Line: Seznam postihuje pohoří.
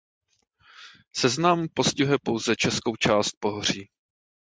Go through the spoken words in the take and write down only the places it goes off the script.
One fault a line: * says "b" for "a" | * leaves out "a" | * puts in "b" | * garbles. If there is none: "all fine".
* puts in "pouze českou část"